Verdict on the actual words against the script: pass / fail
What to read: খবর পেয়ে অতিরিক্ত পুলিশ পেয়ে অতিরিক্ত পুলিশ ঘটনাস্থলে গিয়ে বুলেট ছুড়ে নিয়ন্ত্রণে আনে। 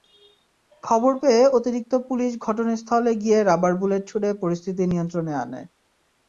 fail